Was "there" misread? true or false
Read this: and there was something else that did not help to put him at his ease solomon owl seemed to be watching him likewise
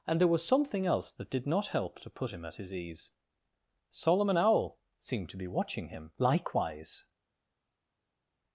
false